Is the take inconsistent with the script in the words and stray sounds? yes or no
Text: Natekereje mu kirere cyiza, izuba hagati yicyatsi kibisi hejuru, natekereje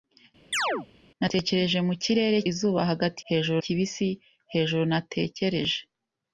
yes